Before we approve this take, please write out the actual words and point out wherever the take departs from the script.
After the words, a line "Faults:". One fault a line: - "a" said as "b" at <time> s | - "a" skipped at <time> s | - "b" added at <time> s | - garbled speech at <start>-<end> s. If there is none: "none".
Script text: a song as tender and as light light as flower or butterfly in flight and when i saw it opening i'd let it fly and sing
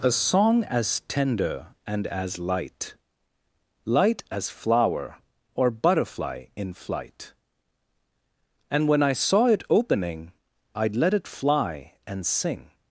a song as tender and as light light as flower or butterfly in flight and when i saw it opening i'd let it fly and sing
Faults:
none